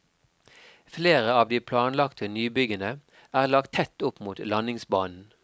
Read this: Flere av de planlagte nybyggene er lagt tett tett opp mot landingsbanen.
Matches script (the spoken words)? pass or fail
fail